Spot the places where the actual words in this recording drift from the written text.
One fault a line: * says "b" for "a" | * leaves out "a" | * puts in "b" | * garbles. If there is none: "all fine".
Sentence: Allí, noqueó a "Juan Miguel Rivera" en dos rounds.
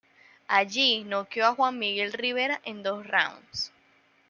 all fine